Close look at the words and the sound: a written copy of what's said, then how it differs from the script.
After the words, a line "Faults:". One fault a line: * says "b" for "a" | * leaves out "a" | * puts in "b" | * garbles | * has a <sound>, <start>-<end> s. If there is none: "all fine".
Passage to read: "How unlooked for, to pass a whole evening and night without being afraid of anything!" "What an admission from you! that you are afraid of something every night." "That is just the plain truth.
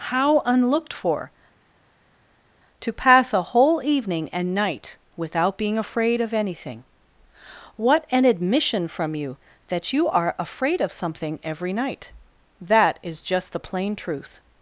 "How unlooked for, to pass a whole evening and night without being afraid of anything!" "What an admission from you! that you are afraid of something every night." "That is just the plain truth.
Faults:
all fine